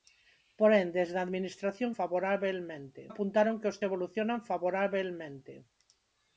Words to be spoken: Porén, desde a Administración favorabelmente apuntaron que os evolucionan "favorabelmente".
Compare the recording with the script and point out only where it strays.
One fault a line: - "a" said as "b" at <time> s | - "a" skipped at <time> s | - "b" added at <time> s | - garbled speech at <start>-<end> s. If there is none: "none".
none